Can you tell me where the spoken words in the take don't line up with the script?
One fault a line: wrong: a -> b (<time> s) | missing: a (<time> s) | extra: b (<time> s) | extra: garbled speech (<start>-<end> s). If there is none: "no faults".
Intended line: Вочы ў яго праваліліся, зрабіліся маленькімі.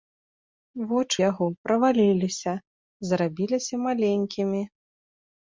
missing: ў (1.2 s)